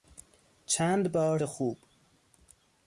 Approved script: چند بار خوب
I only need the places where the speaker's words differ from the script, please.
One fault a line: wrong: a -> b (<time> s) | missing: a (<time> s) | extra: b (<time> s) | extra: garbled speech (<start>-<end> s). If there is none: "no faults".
no faults